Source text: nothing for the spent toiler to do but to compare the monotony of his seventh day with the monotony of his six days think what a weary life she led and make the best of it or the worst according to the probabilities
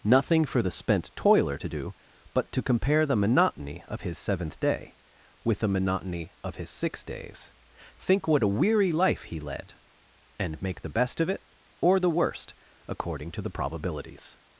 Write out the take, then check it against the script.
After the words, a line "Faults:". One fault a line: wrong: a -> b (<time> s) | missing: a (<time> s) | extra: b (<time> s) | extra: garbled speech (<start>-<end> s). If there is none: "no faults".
nothing for the spent toiler to do but to compare the monotony of his seventh day with the monotony of his six days think what a weary life he led and make the best of it or the worst according to the probabilities
Faults:
wrong: she -> he (9.2 s)